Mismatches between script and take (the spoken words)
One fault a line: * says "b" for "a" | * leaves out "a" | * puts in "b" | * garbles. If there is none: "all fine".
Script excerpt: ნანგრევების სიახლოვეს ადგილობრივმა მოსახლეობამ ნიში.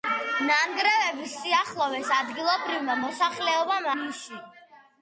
all fine